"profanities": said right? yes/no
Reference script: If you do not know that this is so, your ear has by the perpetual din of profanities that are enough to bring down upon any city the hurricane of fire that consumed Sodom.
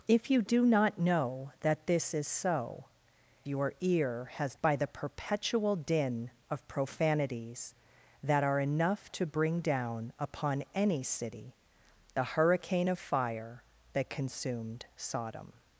yes